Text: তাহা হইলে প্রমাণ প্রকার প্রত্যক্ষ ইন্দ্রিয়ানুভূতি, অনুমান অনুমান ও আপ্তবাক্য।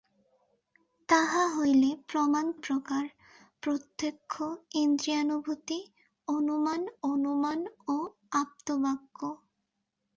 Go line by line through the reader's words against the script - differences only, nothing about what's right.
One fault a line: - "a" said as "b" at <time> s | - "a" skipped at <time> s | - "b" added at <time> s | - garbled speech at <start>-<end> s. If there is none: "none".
none